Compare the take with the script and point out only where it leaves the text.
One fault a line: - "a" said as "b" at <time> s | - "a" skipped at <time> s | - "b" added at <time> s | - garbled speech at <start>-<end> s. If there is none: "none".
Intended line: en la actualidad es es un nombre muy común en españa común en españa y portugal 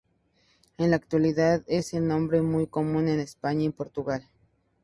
- "es" skipped at 1.9 s
- "común en españa" skipped at 3.7 s